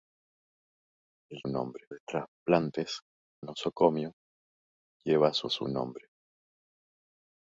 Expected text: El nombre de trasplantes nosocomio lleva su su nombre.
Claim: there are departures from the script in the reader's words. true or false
false